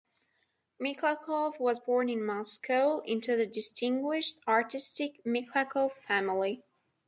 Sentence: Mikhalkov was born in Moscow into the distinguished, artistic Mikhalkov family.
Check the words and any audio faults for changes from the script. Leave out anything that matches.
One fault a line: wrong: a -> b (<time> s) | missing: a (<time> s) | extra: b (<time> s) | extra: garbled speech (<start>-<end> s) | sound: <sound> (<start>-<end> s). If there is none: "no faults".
no faults